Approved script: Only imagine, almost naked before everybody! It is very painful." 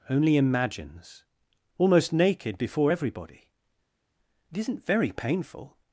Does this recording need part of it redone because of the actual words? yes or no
yes